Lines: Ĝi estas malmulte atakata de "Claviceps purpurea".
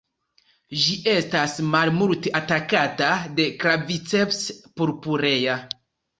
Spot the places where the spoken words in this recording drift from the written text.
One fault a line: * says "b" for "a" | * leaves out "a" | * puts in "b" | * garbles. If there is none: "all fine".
all fine